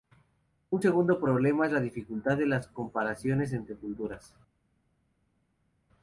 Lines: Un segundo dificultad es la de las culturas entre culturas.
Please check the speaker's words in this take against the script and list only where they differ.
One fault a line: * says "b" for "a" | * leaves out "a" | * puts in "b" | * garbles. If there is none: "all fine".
* says "problema" for "dificultad"
* puts in "dificultad"
* says "comparaciones" for "culturas"